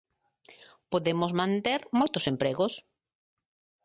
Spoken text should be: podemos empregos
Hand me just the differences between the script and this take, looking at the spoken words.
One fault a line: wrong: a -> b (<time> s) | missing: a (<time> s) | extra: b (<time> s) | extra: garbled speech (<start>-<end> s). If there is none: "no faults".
extra: manter moitos (1.4 s)